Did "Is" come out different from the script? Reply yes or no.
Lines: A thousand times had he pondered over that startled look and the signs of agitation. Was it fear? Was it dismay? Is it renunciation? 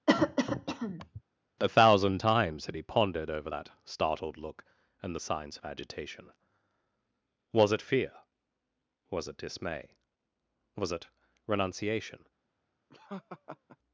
yes